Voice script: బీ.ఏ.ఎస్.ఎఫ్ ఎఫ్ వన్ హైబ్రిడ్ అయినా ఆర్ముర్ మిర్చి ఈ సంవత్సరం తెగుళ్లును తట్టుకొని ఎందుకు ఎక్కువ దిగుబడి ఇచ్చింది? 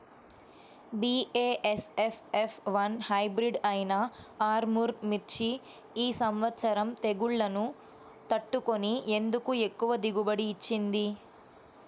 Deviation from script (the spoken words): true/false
false